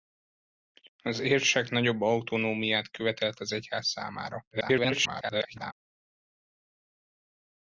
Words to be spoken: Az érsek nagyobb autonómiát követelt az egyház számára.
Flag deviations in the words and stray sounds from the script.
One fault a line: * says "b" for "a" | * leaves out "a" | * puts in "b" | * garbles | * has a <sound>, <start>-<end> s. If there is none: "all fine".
* garbles